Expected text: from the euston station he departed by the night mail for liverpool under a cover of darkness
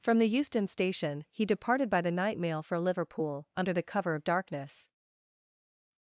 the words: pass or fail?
fail